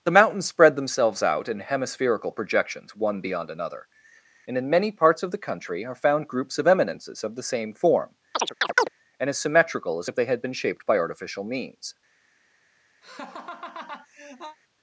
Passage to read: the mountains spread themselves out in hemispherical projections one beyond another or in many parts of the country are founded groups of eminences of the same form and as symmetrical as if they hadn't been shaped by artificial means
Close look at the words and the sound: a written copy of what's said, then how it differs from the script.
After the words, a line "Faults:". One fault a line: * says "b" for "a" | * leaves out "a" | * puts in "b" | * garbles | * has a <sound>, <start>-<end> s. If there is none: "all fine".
the mountains spread themselves out in hemispherical projections one beyond another and in many parts of the country are found groups of eminences of the same form and as symmetrical as if they had been shaped by artificial means
Faults:
* says "and" for "or"
* says "found" for "founded"
* has a chirp, 8.3-8.9 s
* says "had" for "hadn't"
* has a laugh, 13.0-14.6 s